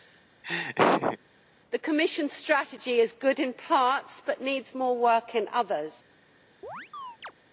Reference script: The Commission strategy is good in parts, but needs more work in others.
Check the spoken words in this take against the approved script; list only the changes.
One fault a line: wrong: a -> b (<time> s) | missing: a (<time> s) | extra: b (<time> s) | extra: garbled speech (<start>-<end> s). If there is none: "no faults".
no faults